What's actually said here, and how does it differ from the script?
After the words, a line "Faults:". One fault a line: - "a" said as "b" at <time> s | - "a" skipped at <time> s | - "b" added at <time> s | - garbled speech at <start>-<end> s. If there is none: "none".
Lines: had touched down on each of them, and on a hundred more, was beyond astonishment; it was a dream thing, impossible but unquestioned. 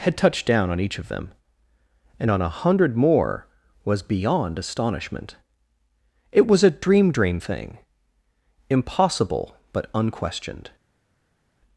had touched down on each of them, and on a hundred more, was beyond astonishment; it was a dream dream thing, impossible but unquestioned.
Faults:
- "dream" added at 7.1 s